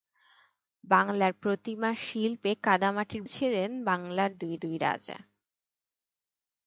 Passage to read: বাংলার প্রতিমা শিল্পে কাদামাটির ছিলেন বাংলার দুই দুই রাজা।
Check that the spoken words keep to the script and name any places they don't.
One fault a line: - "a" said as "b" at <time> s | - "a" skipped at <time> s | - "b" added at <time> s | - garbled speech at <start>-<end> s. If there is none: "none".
none